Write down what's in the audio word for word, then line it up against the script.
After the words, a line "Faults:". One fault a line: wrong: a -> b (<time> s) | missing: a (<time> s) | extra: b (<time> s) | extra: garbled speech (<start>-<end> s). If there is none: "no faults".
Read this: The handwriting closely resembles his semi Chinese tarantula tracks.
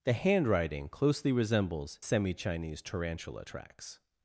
The handwriting closely resembles semi Chinese tarantula tracks.
Faults:
missing: his (2.0 s)